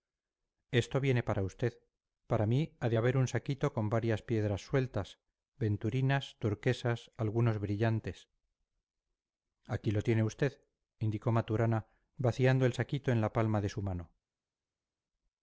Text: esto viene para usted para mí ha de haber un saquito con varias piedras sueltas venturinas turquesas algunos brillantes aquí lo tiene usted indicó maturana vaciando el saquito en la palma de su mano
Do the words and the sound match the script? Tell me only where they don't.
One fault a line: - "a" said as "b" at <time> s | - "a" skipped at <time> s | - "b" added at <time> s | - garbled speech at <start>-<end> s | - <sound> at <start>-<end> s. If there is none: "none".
none